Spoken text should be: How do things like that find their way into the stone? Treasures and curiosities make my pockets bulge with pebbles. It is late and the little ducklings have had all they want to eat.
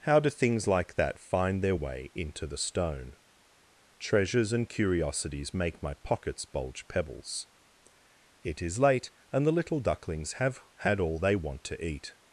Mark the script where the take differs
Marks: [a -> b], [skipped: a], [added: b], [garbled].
How do things like that find their way into the stone? Treasures and curiosities make my pockets bulge [skipped: with] pebbles. It is late and the little ducklings have had all they want to eat.